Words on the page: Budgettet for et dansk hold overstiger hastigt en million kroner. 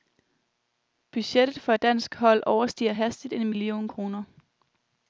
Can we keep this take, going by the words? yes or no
yes